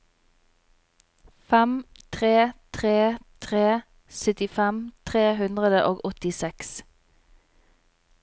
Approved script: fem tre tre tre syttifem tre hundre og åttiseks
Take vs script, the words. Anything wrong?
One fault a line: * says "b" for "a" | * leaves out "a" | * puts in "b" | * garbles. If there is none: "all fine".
all fine